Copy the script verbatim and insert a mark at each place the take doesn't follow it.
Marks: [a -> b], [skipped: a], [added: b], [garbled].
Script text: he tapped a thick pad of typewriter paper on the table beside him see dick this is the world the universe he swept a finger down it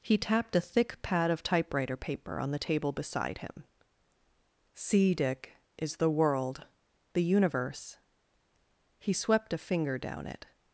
he tapped a thick pad of typewriter paper on the table beside him see dick [skipped: this] is the world the universe he swept a finger down it